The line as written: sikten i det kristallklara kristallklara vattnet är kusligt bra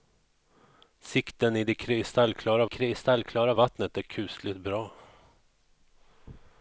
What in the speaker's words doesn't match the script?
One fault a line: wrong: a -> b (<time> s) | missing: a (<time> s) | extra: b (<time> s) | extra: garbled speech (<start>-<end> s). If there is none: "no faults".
no faults